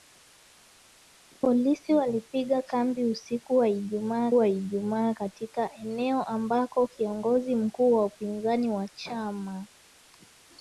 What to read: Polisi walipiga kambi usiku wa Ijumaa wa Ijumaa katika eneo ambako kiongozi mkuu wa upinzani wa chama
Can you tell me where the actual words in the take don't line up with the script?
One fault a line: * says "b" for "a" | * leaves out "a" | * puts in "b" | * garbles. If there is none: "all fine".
all fine